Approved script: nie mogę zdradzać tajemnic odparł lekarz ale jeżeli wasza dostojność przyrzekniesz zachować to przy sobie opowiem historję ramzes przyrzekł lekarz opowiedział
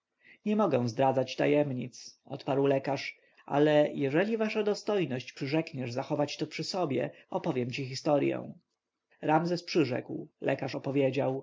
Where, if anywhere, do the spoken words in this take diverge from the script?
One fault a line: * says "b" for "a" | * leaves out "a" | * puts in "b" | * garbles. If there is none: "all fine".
* puts in "ci"